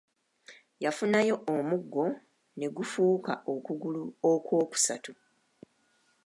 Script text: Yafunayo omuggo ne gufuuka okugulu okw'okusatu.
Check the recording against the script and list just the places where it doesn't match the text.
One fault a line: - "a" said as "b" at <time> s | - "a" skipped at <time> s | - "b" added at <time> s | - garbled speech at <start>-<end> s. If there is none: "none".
none